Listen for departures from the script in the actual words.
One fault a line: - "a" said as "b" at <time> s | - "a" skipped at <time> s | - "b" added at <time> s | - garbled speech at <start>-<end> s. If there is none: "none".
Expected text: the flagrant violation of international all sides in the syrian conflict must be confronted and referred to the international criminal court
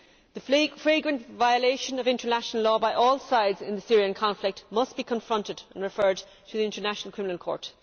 - "law by" added at 2.6 s